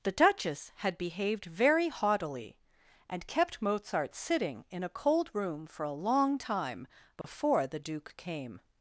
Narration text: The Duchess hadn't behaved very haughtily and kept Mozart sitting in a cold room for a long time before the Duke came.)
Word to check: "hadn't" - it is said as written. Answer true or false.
false